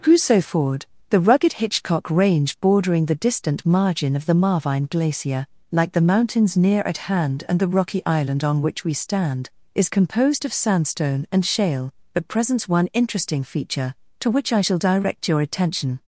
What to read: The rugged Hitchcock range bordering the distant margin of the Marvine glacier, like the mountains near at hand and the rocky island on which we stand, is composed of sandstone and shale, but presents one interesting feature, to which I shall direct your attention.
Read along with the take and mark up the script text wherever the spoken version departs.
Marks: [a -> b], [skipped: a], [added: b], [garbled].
[added: crusoe ford] The rugged Hitchcock range bordering the distant margin of the Marvine glacier, like the mountains near at hand and the rocky island on which we stand, is composed of sandstone and shale, but presents one interesting feature, to which I shall direct your attention.